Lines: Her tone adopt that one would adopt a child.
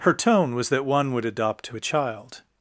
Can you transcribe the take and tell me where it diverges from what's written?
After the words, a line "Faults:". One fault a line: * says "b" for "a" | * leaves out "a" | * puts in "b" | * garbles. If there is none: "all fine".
Her tone was that one would adopt to a child.
Faults:
* says "was" for "adopt"
* puts in "to"